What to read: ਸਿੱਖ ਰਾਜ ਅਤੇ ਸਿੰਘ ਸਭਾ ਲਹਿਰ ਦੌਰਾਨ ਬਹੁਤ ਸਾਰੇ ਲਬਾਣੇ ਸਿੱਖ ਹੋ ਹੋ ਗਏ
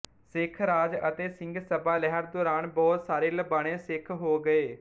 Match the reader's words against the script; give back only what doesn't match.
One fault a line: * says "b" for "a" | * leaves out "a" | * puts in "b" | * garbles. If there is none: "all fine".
* leaves out "ਹੋ"